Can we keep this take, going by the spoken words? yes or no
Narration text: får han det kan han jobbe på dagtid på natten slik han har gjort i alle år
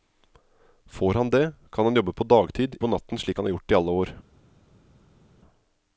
yes